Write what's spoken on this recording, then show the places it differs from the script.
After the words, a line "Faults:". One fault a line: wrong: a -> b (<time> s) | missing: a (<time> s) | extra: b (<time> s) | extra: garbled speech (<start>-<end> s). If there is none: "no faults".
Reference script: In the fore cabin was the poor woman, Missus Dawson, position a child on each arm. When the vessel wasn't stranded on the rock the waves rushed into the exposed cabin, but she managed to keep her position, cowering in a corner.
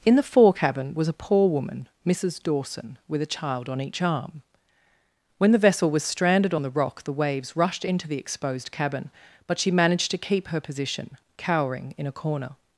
In the fore cabin was a poor woman, Missus Dawson, with a child on each arm. When the vessel was stranded on the rock the waves rushed into the exposed cabin, but she managed to keep her position, cowering in a corner.
Faults:
wrong: the -> a (1.1 s)
wrong: position -> with (3.1 s)
wrong: wasn't -> was (5.9 s)